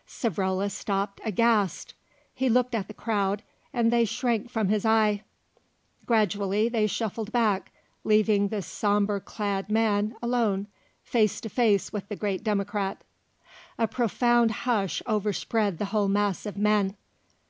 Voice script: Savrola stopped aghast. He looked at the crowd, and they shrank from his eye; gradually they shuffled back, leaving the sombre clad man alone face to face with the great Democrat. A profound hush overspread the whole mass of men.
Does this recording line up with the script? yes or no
yes